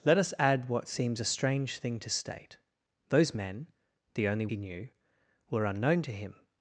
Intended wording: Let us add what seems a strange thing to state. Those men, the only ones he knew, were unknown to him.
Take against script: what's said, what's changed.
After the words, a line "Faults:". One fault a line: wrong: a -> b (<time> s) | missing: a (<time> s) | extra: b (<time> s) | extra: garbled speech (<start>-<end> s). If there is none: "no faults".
Let us add what seems a strange thing to state. Those men, the only he knew, were unknown to him.
Faults:
missing: ones (4.5 s)